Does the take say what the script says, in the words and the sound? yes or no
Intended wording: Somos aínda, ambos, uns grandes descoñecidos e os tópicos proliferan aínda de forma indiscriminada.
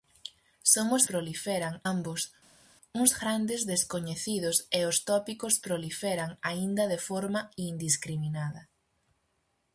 no